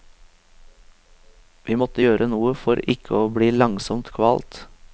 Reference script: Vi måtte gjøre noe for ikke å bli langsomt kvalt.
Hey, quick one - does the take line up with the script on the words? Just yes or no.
yes